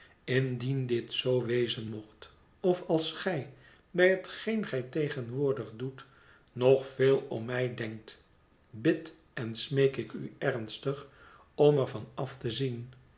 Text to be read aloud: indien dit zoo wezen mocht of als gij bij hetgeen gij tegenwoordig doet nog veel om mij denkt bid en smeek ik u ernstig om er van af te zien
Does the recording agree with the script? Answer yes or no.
yes